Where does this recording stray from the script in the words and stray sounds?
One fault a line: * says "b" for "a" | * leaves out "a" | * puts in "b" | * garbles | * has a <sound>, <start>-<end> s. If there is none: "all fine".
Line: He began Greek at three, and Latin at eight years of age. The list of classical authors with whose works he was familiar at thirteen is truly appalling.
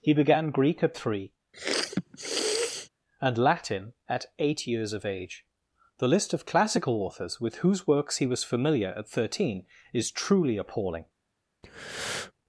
* has a sniff, 1.5-2.9 s
* has a breath, 11.6-12.3 s